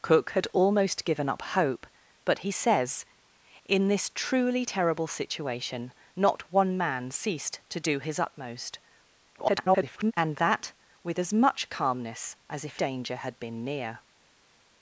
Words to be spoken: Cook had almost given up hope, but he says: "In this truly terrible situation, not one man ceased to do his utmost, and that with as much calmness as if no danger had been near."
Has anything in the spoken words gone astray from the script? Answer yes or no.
yes